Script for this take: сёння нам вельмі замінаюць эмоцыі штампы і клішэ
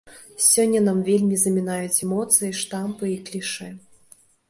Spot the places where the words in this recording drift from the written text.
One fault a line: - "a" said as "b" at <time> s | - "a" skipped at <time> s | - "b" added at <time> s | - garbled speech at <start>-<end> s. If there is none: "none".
none